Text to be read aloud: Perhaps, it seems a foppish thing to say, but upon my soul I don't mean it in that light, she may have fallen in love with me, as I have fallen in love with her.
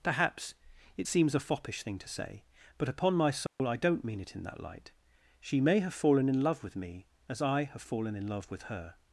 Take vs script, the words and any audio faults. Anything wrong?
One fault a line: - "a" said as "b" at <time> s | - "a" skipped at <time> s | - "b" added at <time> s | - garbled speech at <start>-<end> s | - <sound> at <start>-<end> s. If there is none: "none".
- dropout at 3.5-3.6 s